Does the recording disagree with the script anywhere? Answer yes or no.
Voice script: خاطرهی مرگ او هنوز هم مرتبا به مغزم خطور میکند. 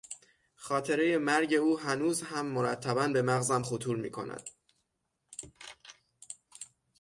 no